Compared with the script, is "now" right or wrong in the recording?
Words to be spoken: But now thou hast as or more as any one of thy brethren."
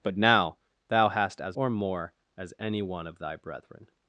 right